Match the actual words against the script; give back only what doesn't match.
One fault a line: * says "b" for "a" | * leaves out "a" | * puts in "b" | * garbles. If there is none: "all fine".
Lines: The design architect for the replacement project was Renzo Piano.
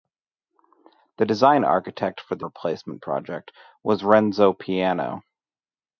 all fine